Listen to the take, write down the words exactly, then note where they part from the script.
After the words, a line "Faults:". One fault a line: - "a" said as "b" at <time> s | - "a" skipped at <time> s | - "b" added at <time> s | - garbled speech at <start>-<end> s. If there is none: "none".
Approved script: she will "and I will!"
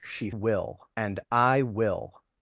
she will "and I will!"
Faults:
none